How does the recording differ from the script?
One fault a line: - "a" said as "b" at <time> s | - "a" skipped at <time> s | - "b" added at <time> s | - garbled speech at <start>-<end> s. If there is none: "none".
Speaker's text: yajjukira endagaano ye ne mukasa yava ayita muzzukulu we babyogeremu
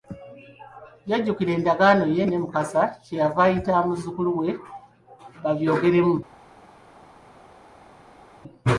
- "kye" added at 3.0 s